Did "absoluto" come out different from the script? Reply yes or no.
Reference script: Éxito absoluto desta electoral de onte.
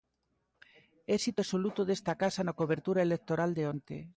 no